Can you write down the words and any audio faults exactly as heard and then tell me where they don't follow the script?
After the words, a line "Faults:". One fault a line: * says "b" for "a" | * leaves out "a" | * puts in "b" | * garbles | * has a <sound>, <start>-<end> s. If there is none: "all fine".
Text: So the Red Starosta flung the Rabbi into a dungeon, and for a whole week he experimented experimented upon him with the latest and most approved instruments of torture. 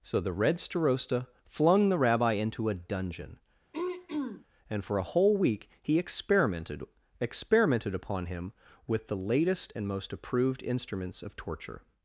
So the Red Starosta flung the Rabbi into a dungeon, and for a whole week he experimented experimented upon him with the latest and most approved instruments of torture.
Faults:
* has a throat clearing, 3.7-4.5 s